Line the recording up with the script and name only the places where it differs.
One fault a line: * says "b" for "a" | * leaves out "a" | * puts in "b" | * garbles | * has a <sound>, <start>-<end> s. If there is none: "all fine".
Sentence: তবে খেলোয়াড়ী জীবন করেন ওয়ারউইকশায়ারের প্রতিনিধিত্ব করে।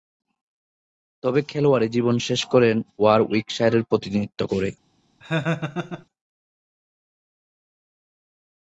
* puts in "শেষ"
* has a laugh, 5.2-6.1 s